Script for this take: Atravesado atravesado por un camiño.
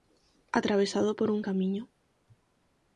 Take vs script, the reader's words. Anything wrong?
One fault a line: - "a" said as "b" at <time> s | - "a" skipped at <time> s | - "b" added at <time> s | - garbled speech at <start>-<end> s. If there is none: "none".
- "atravesado" skipped at 1.1 s